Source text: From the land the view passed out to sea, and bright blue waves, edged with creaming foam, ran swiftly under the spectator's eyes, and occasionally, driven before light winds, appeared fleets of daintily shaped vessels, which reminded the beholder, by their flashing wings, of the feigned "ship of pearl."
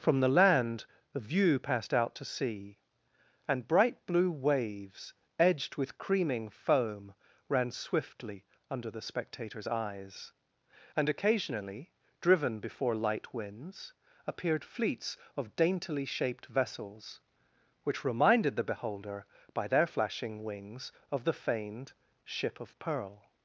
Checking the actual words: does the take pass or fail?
pass